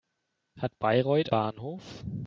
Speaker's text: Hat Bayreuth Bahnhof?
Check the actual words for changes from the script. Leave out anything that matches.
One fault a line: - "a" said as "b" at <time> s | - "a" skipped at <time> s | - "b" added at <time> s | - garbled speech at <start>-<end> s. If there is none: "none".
none